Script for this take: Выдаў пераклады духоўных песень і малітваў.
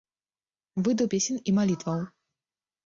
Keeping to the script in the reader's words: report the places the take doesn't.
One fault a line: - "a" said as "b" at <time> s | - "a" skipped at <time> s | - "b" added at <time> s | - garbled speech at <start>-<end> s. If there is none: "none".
- "пераклады духоўных" skipped at 1.1 s